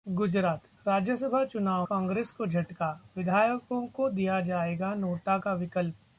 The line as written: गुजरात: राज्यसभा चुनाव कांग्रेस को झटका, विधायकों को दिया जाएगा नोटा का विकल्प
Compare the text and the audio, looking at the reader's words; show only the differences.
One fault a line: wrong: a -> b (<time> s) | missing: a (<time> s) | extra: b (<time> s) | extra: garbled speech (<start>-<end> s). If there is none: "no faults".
no faults